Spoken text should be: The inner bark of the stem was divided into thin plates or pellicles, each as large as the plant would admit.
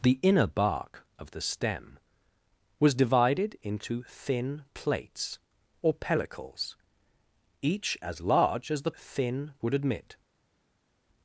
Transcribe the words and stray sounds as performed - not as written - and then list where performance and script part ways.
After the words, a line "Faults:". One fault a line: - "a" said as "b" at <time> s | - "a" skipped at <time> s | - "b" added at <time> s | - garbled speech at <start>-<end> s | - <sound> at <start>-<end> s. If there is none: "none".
The inner bark of the stem was divided into thin plates or pellicles, each as large as the thin would admit.
Faults:
- "plant" said as "thin" at 8.9 s